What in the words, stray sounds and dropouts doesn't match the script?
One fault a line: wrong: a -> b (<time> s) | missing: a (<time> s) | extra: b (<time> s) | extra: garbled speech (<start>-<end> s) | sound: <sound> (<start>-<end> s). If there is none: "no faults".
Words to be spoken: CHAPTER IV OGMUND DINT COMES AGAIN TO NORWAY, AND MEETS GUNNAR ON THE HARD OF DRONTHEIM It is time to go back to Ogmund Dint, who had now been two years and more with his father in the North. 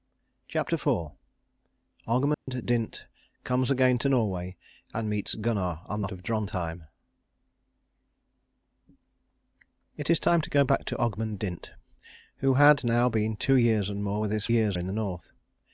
sound: dropout (2.3-2.5 s)
missing: HARD (6.1 s)
wrong: father -> years (14.5 s)